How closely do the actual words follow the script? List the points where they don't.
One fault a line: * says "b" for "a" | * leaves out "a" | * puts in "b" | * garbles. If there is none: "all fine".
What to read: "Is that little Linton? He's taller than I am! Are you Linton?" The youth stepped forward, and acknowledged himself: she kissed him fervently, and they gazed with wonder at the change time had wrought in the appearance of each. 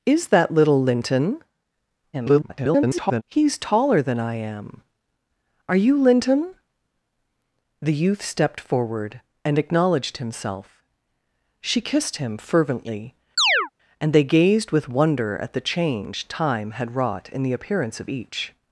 * garbles